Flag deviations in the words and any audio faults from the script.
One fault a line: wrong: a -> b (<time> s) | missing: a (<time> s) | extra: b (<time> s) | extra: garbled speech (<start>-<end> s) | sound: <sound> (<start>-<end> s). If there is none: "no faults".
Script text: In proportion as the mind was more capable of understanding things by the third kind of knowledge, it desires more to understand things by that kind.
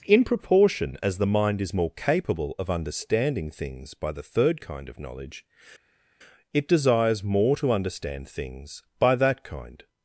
wrong: was -> is (1.6 s)